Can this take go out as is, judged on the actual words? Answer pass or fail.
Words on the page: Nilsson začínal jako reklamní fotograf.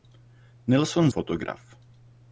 fail